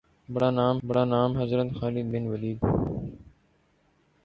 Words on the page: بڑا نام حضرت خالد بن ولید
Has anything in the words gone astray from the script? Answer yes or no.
yes